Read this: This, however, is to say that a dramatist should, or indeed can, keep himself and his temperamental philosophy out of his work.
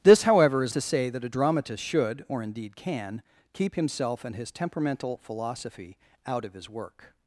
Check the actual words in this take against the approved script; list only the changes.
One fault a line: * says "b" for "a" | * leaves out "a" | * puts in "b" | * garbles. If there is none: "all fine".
all fine